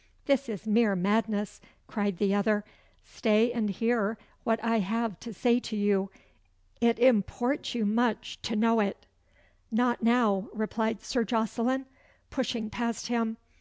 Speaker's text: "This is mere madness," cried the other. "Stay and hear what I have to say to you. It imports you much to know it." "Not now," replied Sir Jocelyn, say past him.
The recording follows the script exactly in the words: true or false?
false